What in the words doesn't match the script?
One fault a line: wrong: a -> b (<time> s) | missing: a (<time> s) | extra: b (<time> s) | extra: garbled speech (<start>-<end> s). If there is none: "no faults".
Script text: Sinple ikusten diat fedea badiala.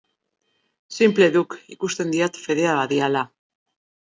extra: duk (1.4 s)